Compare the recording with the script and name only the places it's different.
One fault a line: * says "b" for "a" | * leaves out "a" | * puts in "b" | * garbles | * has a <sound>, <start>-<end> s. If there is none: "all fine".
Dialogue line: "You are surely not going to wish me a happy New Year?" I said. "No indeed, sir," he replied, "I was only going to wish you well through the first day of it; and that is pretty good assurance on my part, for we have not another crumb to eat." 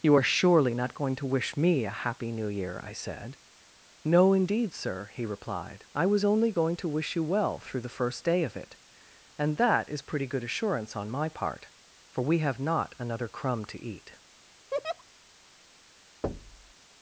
* has a laugh, 14.7-15.0 s
* has a thud, 16.2-16.7 s